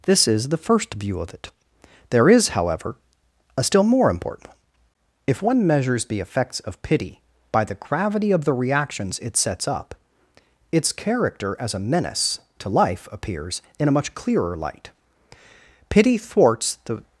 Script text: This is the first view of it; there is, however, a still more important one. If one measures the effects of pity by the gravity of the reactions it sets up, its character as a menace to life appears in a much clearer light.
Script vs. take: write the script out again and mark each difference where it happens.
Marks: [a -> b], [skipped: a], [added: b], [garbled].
This is the first view of it; there is, however, a still more important one. If one measures the effects of pity by the gravity of the reactions it sets up, its character as a menace to life appears in a much clearer light. [added: Pity thwarts the]